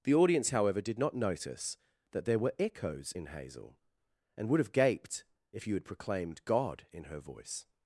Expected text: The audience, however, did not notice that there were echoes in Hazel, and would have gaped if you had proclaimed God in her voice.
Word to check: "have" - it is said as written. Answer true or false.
true